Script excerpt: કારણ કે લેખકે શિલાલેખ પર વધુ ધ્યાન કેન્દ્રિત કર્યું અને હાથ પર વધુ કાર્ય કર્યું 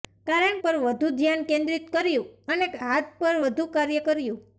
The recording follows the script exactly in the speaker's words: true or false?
false